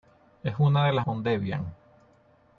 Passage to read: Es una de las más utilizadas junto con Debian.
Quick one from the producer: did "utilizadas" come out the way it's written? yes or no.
no